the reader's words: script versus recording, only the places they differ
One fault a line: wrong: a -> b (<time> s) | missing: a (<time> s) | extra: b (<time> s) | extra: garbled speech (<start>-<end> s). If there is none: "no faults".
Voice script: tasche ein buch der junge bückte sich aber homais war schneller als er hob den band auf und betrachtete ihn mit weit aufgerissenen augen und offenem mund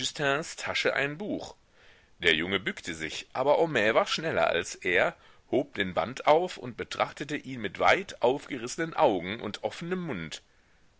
no faults